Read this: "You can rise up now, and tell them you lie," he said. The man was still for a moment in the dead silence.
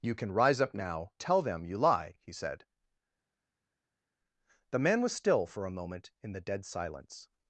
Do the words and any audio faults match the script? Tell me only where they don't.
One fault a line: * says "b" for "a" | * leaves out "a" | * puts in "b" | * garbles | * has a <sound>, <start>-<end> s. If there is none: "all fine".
* leaves out "and"